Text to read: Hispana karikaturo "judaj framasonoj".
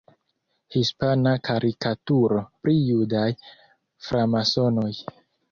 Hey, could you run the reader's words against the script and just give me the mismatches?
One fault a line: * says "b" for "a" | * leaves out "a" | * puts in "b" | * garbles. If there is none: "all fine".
* puts in "pri"